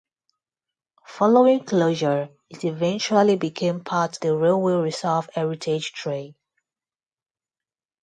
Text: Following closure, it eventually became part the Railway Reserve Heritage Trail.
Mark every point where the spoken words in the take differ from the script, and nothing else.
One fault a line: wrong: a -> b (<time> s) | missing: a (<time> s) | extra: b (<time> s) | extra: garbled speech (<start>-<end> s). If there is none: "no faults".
no faults